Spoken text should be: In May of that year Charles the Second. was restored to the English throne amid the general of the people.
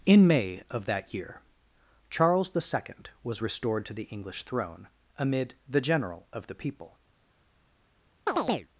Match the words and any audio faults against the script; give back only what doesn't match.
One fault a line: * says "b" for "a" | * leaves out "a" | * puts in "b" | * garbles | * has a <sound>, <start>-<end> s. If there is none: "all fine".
* has a chirp, 8.3-8.7 s